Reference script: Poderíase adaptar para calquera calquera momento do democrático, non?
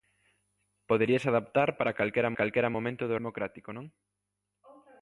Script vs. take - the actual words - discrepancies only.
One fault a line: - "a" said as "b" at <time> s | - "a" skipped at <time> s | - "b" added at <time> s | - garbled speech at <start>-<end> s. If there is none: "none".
none